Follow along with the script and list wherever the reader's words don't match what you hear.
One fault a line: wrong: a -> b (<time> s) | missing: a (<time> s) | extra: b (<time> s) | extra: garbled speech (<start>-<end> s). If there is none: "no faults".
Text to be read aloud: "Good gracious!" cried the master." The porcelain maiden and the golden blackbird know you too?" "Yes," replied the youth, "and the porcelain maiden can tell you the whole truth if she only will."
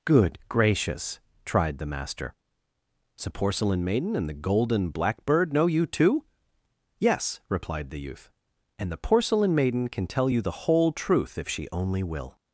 wrong: cried -> tried (1.4 s)